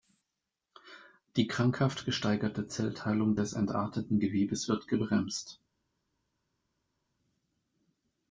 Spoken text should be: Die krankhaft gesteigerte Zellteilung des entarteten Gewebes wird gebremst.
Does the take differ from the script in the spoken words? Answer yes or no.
no